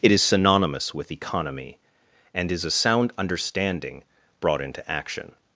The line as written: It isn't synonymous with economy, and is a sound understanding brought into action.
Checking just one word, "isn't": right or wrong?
wrong